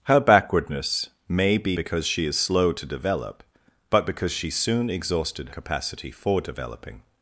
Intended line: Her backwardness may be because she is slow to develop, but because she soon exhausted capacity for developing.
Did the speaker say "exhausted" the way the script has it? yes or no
yes